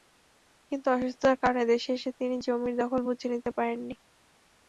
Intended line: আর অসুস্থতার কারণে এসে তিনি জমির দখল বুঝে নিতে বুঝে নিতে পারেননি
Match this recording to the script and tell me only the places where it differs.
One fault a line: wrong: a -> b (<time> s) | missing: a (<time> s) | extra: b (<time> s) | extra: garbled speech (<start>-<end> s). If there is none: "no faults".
wrong: আর -> কিন্তু (0.7 s)
extra: দেশে (1.7 s)
missing: বুঝে নিতে (3.5 s)